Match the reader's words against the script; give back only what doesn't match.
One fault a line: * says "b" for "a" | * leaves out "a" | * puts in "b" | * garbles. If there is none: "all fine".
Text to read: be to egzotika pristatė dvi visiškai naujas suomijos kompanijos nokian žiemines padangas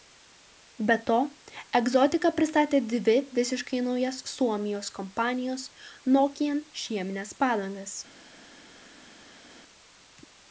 all fine